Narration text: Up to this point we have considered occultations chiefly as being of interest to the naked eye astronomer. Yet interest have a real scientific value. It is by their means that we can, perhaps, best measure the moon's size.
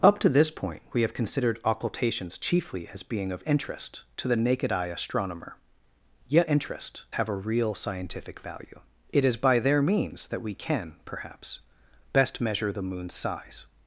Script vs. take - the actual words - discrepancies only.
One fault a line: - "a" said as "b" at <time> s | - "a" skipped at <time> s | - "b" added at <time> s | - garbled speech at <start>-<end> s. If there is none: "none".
none